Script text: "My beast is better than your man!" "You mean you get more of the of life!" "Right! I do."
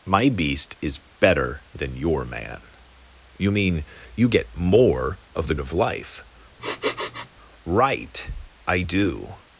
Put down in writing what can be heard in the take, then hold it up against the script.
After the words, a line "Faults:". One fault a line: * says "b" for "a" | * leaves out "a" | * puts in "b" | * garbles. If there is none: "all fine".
"My beast is better than your man!" "You mean you get more of the of life!" "Right! I do."
Faults:
all fine